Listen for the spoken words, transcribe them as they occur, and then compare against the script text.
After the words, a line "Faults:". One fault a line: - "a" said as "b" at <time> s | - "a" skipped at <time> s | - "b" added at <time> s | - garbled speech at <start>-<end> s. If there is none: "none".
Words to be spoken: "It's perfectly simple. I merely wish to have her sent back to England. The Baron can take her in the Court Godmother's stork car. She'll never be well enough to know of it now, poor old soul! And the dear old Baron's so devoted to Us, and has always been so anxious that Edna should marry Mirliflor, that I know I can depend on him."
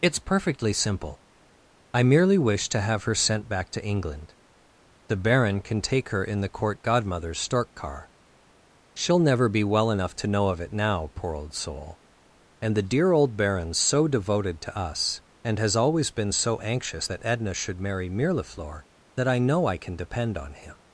"It's perfectly simple. I merely wish to have her sent back to England. The Baron can take her in the Court Godmother's stork car. She'll never be well enough to know of it now, poor old soul! And the dear old Baron's so devoted to Us, and has always been so anxious that Edna should marry Mirliflor, that I know I can depend on him."
Faults:
none